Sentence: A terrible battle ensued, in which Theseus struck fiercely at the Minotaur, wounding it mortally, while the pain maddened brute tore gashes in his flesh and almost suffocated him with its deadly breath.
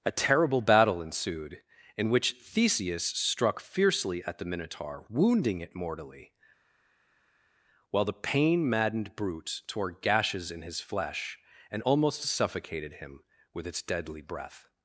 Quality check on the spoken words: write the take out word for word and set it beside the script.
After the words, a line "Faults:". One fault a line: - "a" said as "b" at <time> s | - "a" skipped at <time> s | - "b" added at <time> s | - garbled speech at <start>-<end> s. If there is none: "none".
A terrible battle ensued, in which Theseus struck fiercely at the Minotaur, wounding it mortally, while the pain maddened brute tore gashes in his flesh and almost suffocated him with its deadly breath.
Faults:
none